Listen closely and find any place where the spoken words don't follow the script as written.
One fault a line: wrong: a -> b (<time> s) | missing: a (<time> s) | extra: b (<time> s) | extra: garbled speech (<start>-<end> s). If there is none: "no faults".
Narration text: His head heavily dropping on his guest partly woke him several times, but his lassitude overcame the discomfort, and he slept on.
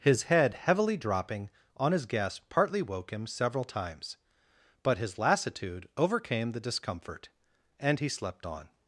no faults